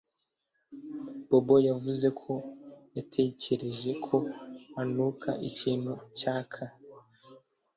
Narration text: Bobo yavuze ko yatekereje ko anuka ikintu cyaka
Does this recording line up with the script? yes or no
yes